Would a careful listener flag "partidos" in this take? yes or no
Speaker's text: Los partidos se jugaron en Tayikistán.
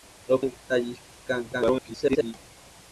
yes